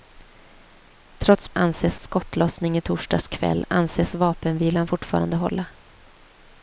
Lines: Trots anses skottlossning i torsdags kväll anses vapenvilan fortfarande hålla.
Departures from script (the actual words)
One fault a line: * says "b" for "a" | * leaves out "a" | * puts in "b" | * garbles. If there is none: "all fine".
all fine